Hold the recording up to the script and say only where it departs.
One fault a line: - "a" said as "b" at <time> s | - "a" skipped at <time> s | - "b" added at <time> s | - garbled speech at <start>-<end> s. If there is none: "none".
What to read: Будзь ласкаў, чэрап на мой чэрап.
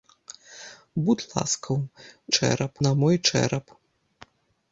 none